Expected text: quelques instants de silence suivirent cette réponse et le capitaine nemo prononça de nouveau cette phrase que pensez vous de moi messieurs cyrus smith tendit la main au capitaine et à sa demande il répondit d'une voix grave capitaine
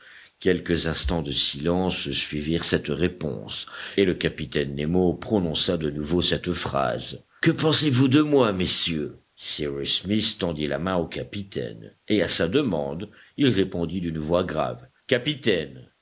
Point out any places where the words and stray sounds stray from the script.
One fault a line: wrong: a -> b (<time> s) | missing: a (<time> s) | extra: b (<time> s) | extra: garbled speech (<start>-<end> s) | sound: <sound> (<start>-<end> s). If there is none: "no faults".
no faults